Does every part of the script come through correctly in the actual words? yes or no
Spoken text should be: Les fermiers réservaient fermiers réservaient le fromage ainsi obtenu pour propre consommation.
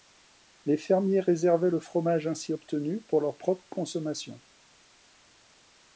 no